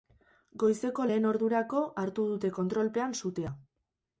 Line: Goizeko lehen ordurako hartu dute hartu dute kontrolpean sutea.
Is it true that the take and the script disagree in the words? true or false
true